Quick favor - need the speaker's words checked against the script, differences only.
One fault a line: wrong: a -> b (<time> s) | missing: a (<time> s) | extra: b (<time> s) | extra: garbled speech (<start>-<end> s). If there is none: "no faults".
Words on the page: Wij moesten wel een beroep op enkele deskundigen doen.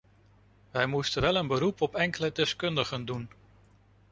no faults